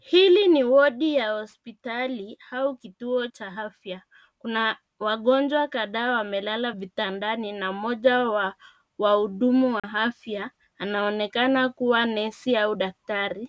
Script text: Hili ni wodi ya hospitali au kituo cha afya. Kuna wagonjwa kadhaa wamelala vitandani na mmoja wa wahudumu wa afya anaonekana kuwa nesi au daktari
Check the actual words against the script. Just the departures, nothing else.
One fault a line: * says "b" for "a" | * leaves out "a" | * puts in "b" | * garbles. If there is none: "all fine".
all fine